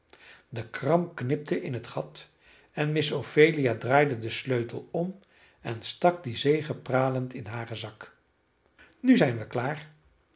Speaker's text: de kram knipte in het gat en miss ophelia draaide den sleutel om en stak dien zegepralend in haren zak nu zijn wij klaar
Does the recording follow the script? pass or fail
pass